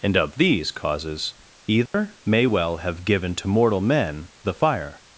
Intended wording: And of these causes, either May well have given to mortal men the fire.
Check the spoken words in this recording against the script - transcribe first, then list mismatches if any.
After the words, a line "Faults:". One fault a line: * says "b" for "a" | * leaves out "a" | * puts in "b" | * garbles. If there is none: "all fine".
And of these causes, either May well have given to mortal men the fire.
Faults:
all fine